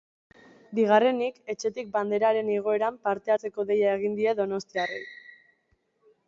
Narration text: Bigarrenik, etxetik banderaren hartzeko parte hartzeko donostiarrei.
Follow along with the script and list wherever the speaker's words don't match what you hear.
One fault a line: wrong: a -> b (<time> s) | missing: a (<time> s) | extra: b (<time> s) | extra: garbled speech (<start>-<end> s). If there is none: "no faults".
wrong: hartzeko -> igoeran (2.5 s)
extra: deia egin die (3.7 s)